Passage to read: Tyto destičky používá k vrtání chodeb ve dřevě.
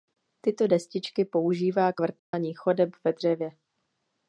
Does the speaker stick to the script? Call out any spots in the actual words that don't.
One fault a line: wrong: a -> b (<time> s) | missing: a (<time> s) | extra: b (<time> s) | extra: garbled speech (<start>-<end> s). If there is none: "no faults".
no faults